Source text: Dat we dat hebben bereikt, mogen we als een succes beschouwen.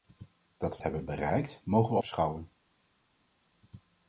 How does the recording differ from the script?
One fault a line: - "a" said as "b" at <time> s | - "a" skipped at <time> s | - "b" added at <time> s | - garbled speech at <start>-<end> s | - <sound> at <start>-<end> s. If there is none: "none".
- "dat" skipped at 0.8 s
- "als een succes" skipped at 2.0 s